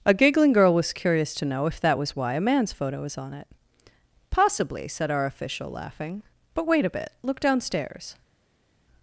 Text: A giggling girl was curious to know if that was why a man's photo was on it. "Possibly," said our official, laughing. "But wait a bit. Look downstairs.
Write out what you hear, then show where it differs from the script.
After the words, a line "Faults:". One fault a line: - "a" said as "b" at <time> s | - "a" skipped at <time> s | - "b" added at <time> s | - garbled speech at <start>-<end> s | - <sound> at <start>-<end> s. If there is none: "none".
A giggling girl was curious to know if that was why a man's photo was on it. "Possibly," said our official, laughing. "But wait a bit. Look downstairs.
Faults:
none